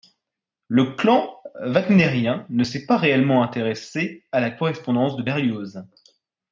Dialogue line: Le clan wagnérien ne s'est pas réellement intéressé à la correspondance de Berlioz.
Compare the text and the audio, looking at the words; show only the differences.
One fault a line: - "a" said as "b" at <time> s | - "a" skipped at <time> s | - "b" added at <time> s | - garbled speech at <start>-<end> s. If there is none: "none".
none